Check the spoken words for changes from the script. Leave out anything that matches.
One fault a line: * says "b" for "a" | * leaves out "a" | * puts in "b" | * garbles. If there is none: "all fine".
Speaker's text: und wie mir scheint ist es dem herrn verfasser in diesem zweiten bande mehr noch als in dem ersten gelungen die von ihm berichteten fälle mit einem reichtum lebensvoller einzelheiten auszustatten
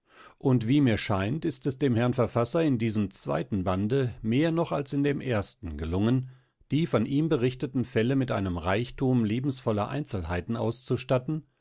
all fine